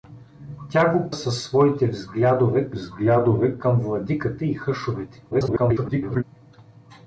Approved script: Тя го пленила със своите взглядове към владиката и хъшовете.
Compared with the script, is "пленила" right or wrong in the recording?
wrong